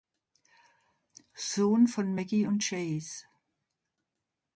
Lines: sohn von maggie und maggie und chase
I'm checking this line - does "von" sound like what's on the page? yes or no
yes